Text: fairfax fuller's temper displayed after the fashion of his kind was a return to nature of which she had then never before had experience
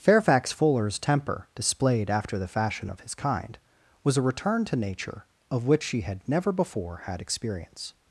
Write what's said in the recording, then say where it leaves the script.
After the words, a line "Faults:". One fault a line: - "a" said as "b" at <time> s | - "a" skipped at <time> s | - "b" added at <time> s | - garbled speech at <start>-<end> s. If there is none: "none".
fairfax fuller's temper displayed after the fashion of his kind was a return to nature of which she had never before had experience
Faults:
- "then" skipped at 6.3 s